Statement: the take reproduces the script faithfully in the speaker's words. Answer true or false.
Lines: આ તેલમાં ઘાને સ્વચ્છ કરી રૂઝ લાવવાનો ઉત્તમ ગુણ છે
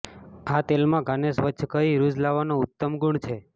true